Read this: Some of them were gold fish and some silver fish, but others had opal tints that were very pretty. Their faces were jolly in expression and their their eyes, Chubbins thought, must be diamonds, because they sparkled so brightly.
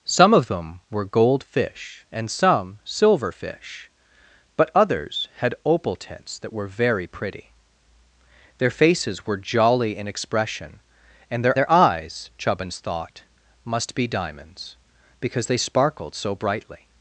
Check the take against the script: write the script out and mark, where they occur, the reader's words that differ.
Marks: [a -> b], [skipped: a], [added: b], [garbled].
Some of them were gold fish and some silver fish, but others had opal tints that were very pretty. Their faces were jolly in expression and their their eyes, Chubbins thought, must be diamonds, because they sparkled so brightly.